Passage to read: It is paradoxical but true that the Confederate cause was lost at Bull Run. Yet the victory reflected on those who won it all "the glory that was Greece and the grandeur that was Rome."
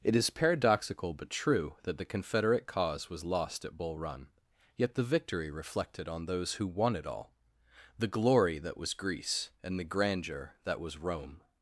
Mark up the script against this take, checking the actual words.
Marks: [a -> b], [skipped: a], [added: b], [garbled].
It is paradoxical but true that the Confederate cause was lost at Bull Run. Yet the victory reflected on those who won it all "the glory that was Greece and the grandeur that was Rome."